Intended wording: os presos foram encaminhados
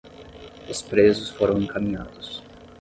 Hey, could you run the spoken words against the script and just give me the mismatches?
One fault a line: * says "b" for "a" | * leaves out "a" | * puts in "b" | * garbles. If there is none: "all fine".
all fine